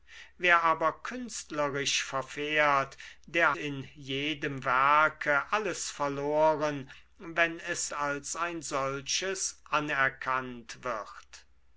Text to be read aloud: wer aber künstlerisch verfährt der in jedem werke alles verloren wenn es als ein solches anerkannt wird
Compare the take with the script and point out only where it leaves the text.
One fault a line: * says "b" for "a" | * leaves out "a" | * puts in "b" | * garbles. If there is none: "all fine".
all fine